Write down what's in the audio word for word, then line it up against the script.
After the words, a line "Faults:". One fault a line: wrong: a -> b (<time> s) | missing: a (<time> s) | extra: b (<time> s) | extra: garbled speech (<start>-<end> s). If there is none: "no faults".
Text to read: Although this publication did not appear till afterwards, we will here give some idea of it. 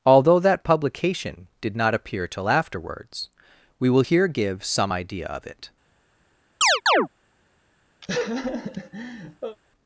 Although that publication did not appear till afterwards, we will here give some idea of it.
Faults:
wrong: this -> that (0.4 s)